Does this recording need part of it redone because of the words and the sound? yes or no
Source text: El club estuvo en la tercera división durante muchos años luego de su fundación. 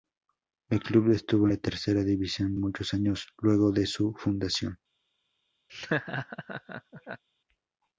yes